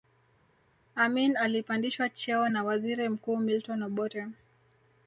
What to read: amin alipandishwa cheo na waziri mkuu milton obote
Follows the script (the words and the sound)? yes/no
yes